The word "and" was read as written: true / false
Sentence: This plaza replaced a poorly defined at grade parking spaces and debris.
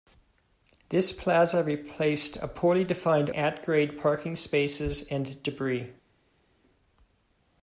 true